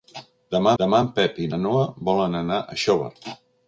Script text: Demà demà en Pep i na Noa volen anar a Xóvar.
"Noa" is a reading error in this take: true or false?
false